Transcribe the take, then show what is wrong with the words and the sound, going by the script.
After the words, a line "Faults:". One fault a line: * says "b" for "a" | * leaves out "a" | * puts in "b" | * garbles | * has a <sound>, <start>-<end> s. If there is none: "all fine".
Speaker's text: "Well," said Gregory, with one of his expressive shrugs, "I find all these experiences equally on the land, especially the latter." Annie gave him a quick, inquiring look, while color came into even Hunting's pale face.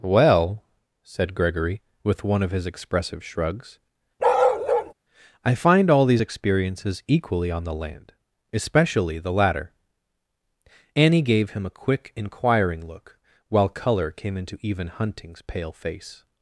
"Well," said Gregory, with one of his expressive shrugs, "I find all these experiences equally on the land, especially the latter." Annie gave him a quick, inquiring look, while color came into even Hunting's pale face.
Faults:
* has a bark, 4.2-4.9 s